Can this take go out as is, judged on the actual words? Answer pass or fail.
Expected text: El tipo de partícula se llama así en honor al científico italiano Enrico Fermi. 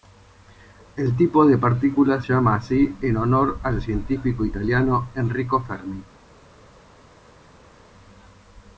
fail